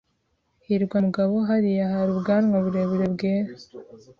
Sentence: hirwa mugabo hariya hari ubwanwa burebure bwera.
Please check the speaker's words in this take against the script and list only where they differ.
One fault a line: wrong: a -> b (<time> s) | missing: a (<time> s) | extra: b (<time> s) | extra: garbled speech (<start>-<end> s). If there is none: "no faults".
no faults